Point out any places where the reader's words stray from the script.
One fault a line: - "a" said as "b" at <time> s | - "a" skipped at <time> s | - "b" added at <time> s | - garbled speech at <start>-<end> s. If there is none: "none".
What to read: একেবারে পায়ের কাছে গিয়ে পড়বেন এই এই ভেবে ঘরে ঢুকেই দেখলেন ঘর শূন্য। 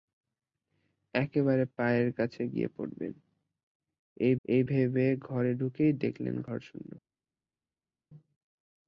none